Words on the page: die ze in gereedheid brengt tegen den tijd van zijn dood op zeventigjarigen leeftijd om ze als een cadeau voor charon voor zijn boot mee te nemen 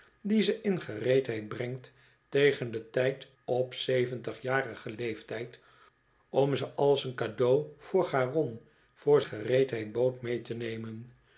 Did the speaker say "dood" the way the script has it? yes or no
no